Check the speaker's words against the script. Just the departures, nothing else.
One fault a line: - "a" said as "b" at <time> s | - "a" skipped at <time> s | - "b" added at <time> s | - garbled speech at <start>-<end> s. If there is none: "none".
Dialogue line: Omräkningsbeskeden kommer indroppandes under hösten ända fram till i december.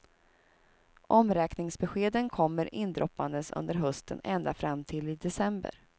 none